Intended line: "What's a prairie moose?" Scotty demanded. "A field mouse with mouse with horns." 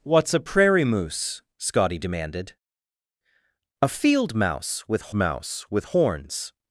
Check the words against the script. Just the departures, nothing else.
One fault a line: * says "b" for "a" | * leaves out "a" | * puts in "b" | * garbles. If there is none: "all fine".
all fine